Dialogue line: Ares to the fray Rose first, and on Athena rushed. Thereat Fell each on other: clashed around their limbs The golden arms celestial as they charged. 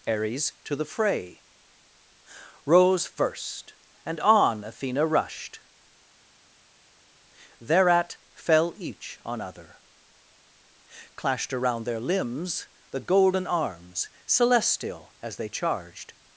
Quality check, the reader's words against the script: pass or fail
pass